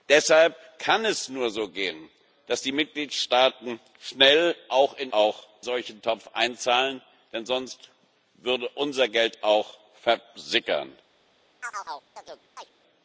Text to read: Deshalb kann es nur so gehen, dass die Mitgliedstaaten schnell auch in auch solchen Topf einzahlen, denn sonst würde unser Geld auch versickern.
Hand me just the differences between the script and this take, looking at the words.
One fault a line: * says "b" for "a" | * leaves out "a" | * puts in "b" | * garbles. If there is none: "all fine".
all fine